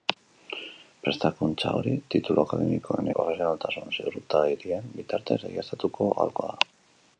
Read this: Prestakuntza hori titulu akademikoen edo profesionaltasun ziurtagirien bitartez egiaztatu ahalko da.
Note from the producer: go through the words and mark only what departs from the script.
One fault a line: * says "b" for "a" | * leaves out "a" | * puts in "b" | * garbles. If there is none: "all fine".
* leaves out "edo"